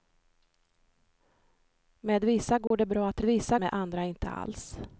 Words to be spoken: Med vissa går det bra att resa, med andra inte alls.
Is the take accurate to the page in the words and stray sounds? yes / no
no